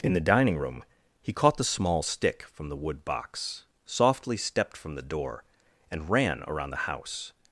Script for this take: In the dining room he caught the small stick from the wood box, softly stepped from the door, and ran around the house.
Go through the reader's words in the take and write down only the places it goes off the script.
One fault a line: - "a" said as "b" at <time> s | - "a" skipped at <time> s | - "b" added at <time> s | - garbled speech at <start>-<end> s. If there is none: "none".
none